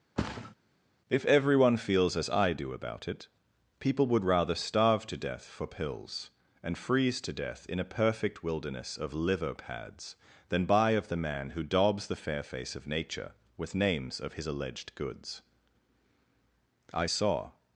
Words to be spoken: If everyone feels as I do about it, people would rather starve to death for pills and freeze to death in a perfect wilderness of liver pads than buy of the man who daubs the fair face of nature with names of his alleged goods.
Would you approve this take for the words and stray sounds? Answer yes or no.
no